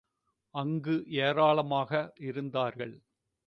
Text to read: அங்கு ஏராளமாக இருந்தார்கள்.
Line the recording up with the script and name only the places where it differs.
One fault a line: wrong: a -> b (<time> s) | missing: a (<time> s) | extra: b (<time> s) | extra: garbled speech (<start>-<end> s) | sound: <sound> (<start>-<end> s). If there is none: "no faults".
no faults